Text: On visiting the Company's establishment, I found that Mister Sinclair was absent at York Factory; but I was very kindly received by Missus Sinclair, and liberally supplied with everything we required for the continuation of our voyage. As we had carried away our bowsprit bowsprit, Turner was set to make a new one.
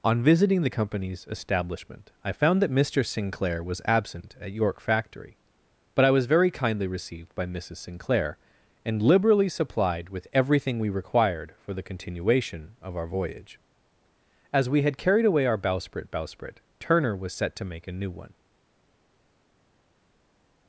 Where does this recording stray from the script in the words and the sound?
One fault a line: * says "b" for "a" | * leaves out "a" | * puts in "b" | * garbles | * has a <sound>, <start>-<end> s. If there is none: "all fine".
all fine